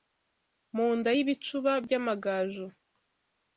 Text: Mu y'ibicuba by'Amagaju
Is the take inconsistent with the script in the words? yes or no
yes